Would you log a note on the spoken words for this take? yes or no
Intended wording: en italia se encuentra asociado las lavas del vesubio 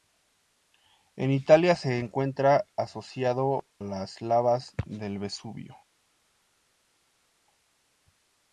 no